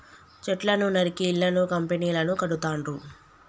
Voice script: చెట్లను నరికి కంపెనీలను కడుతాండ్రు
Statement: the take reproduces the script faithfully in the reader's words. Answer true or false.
false